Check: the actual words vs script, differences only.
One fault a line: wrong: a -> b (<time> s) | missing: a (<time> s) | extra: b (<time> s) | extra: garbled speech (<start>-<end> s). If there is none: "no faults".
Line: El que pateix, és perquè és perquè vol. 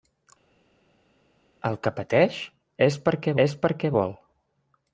no faults